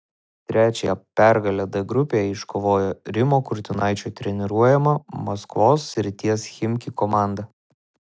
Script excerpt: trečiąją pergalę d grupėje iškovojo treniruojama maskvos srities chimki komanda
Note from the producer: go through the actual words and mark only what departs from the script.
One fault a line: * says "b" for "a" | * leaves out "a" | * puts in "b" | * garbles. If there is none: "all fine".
* puts in "rimo kurtinaičio"